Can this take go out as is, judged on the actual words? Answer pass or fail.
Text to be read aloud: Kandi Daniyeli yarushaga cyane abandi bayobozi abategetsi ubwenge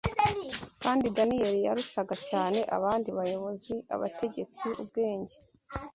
pass